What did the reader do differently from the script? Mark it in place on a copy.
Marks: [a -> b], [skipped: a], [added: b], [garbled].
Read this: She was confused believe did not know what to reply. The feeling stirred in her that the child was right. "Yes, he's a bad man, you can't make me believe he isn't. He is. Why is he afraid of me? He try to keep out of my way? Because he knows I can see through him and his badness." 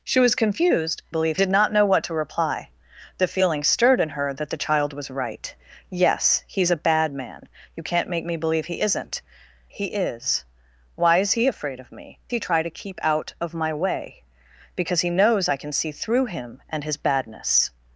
She was confused believe did not know what to reply. The feeling stirred in her that the child was right. "Yes, he's a bad man, you can't make me believe he isn't. He is. Why is he afraid of me? He try to keep out of my way? Because he knows I can see through him and his badness."